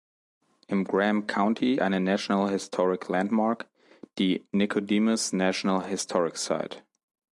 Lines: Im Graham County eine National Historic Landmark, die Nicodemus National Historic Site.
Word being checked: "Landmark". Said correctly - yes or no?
yes